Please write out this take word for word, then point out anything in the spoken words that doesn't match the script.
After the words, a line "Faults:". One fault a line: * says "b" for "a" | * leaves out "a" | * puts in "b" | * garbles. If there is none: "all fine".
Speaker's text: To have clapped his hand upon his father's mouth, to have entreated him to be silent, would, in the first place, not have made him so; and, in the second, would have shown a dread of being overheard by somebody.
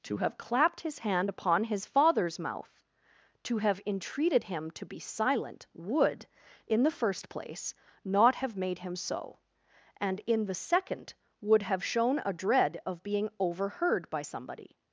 To have clapped his hand upon his father's mouth, to have entreated him to be silent, would, in the first place, not have made him so; and, in the second, would have shown a dread of being overheard by somebody.
Faults:
all fine